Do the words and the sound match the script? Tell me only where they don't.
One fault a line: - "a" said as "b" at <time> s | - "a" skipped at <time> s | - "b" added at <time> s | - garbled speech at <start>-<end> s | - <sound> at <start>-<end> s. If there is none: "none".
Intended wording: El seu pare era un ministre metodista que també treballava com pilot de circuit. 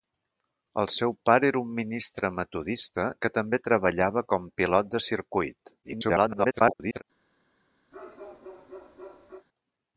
- garbled speech at 5.8-7.0 s
- bark at 7.9-9.5 s